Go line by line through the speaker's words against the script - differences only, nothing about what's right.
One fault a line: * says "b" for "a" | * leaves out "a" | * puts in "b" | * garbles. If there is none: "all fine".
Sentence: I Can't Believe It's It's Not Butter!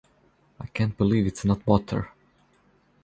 * leaves out "It's"